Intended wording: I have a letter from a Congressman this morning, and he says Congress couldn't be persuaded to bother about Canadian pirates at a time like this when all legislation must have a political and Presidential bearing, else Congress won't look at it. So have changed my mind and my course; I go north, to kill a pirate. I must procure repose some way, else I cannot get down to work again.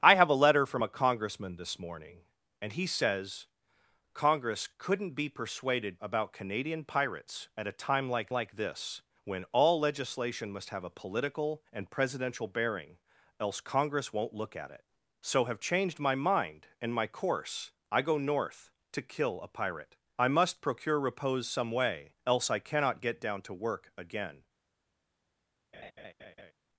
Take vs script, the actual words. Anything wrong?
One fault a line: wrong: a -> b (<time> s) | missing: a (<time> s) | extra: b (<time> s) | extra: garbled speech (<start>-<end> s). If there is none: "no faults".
missing: to bother (6.0 s)
extra: like (8.3 s)